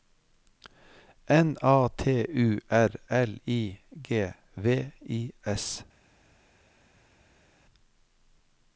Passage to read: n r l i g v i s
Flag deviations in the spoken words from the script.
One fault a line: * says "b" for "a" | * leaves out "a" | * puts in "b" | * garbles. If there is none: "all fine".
* puts in "a t u"